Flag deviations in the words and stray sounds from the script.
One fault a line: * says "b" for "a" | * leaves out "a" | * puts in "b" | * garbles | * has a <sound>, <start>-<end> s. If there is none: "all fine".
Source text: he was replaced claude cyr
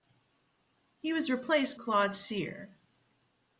all fine